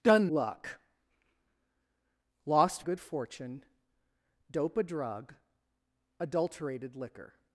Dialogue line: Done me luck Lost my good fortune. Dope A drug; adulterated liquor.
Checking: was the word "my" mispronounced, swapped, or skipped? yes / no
yes